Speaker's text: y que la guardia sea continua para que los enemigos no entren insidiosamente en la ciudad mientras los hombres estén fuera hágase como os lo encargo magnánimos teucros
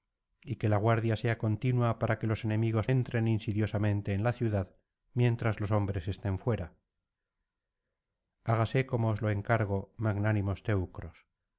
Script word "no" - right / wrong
wrong